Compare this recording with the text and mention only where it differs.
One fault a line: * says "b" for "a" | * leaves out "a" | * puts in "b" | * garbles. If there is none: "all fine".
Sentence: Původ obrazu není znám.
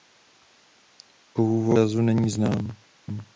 all fine